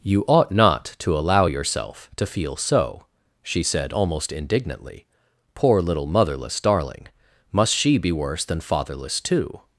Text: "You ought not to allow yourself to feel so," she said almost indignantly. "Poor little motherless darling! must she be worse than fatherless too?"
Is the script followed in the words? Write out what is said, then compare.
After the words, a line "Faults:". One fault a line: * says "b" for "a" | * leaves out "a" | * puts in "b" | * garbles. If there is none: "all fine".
"You ought not to allow yourself to feel so," she said almost indignantly. "Poor little motherless darling! must she be worse than fatherless too?"
Faults:
all fine